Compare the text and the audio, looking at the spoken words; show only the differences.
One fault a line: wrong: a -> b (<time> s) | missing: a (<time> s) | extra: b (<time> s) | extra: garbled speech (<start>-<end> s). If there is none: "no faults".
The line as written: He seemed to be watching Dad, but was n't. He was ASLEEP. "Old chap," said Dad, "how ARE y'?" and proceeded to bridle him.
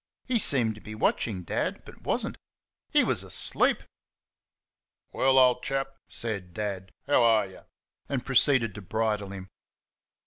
extra: Well (5.1 s)